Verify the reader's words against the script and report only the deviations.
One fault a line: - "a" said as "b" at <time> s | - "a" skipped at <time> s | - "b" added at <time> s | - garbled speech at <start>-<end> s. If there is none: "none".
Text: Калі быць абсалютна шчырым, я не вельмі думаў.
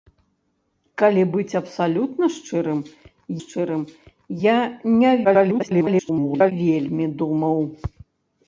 - "шчырым" added at 3.4 s
- garbled speech at 5.2-6.5 s